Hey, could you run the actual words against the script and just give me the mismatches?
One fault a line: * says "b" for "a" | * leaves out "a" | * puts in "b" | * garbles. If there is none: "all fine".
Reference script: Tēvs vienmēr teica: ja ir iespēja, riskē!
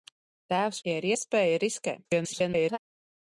* leaves out "vienmēr teica"
* garbles